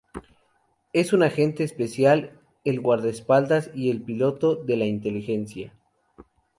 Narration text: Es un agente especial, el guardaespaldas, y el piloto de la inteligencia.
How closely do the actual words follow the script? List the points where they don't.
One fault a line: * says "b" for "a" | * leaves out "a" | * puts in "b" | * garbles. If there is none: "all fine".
all fine